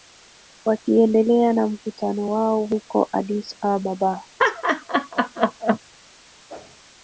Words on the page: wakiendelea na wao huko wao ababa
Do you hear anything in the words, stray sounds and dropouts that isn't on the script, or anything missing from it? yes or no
yes